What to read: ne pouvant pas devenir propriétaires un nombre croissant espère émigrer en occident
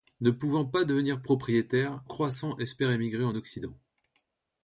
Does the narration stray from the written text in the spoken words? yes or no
yes